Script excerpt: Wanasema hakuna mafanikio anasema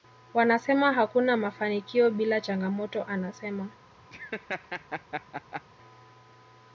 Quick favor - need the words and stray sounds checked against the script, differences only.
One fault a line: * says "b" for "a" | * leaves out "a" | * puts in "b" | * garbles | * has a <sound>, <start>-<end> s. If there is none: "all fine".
* puts in "bila changamoto"
* has a laugh, 4.1-5.6 s